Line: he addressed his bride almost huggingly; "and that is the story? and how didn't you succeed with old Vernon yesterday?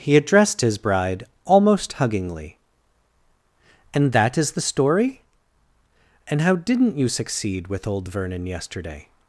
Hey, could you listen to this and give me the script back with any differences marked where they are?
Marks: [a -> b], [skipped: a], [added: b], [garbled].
he addressed his bride almost huggingly; "and that is the story? and how didn't you succeed with old Vernon yesterday?